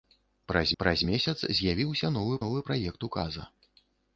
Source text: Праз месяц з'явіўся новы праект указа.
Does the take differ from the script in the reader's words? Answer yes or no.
yes